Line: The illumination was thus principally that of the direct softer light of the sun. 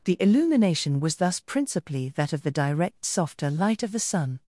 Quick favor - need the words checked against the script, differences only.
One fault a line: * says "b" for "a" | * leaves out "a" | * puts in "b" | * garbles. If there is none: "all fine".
all fine